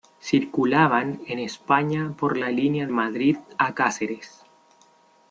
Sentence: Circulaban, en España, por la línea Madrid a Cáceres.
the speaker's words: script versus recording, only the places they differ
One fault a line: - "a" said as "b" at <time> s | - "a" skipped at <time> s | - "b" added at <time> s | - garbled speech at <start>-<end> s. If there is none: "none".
none